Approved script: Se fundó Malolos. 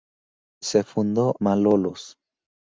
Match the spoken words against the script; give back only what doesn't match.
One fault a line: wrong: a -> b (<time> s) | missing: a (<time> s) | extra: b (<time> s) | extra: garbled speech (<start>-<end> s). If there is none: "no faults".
no faults